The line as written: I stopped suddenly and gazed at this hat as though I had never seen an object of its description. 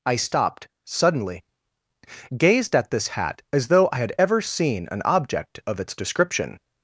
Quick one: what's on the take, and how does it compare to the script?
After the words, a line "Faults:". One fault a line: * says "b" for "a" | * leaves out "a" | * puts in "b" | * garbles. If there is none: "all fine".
I stopped suddenly gazed at this hat as though I had ever seen an object of its description.
Faults:
* leaves out "and"
* says "ever" for "never"